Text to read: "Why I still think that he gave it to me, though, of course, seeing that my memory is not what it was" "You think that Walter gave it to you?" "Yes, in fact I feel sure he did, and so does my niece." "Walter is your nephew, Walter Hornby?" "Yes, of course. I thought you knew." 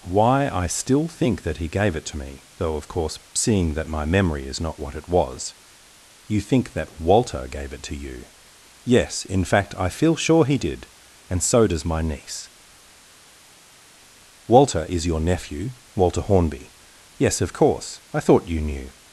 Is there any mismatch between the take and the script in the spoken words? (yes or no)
no